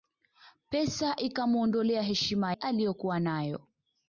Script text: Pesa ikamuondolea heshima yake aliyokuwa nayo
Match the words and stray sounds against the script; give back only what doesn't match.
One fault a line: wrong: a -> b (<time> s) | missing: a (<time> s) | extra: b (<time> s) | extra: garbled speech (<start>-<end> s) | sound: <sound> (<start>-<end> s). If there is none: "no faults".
missing: yake (2.5 s)